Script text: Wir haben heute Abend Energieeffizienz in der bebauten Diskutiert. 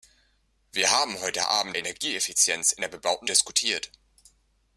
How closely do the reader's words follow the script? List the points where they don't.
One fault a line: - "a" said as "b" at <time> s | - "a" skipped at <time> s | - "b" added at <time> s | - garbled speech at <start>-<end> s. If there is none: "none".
none